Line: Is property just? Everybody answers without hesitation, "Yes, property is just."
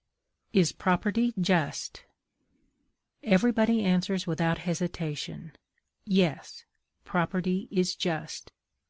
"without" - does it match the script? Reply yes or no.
yes